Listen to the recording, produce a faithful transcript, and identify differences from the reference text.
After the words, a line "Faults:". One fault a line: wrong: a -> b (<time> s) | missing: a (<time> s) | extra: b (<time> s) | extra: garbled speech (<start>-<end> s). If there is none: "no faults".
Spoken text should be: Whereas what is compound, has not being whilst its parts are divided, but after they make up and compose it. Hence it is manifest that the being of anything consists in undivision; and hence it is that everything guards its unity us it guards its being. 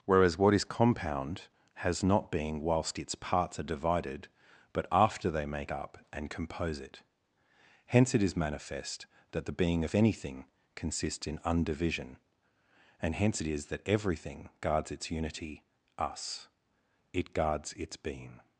Whereas what is compound, has not being whilst its parts are divided, but after they make up and compose it. Hence it is manifest that the being of anything consists in undivision; and hence it is that everything guards its unity us it guards its being.
Faults:
no faults